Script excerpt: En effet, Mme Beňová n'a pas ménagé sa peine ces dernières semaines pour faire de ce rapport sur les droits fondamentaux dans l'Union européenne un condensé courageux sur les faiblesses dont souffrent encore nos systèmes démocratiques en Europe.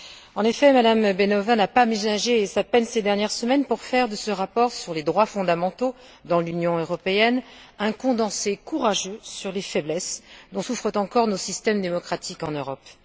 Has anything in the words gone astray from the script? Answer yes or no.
no